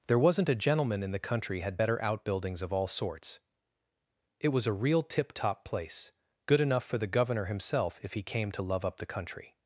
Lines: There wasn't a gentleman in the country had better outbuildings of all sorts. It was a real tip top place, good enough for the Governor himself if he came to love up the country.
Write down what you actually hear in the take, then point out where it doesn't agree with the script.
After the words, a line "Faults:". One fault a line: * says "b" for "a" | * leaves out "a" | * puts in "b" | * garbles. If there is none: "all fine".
There wasn't a gentleman in the country had better outbuildings of all sorts. It was a real tip top place, good enough for the Governor himself if he came to love up the country.
Faults:
all fine